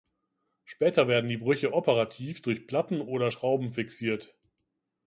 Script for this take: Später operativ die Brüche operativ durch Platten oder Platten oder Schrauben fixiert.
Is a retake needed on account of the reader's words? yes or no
yes